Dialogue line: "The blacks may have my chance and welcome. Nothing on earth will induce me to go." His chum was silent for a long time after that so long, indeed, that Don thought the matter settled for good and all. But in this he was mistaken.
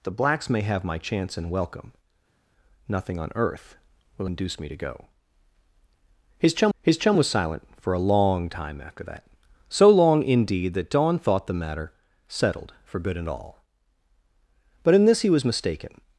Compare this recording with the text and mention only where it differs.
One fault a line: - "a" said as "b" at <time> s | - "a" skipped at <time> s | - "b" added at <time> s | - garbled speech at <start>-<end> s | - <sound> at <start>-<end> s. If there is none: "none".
- "his chum" added at 6.8 s